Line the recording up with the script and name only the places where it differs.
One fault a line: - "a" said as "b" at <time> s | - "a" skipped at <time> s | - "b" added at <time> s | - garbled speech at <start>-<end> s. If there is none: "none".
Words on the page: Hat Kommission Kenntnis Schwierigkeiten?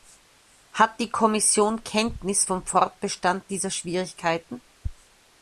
- "die" added at 1.0 s
- "vom Fortbestand dieser" added at 2.4 s